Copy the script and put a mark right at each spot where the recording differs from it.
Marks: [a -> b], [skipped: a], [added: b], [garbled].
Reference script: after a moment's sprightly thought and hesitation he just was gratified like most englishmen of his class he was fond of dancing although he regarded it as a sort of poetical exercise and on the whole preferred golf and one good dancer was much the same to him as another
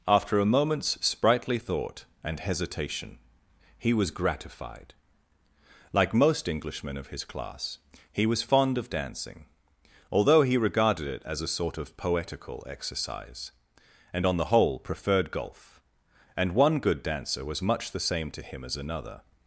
after a moment's sprightly thought and hesitation he [skipped: just] was gratified like most englishmen of his class he was fond of dancing although he regarded it as a sort of poetical exercise and on the whole preferred golf and one good dancer was much the same to him as another